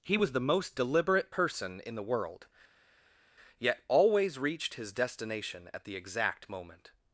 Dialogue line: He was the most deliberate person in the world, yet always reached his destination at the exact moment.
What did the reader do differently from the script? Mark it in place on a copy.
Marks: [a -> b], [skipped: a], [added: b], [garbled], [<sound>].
He was the most deliberate person in the world, yet always reached his destination at the exact moment.